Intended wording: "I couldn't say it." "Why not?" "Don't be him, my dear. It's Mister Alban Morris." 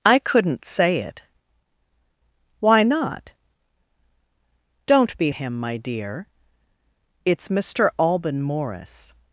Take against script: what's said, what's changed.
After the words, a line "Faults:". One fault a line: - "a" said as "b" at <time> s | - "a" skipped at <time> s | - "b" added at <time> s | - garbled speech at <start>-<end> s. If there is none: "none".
"I couldn't say it." "Why not?" "Don't be him, my dear. It's Mister Alban Morris."
Faults:
none